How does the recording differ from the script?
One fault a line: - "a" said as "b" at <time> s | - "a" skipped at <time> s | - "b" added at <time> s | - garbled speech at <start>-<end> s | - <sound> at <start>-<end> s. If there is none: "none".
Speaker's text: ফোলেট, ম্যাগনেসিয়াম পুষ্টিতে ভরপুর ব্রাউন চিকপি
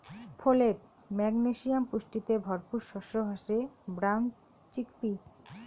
- "শস্য হসে" added at 2.9 s